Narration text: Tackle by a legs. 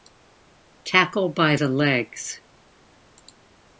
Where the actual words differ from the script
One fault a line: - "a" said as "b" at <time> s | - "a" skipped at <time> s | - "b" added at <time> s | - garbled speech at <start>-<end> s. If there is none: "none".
- "a" said as "the" at 1.5 s